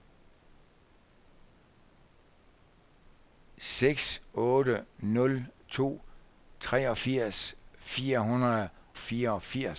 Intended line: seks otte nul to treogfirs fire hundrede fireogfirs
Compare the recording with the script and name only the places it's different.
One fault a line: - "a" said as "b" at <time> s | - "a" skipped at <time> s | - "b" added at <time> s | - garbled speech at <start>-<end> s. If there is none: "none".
none